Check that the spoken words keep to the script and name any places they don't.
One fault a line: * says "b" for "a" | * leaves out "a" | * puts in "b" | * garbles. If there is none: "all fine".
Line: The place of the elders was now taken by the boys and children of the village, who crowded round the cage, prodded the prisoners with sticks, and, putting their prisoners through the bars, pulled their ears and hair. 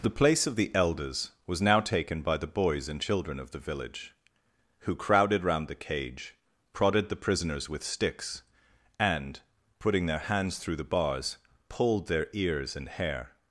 * says "hands" for "prisoners"